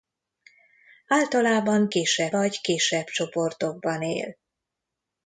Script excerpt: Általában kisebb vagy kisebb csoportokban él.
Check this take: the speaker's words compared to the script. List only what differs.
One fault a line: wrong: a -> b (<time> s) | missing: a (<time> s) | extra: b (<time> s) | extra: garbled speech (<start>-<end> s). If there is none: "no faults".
no faults